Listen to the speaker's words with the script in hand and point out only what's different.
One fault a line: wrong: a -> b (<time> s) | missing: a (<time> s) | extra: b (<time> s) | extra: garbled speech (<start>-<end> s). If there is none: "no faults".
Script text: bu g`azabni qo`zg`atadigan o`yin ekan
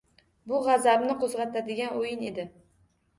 wrong: ekan -> edi (2.3 s)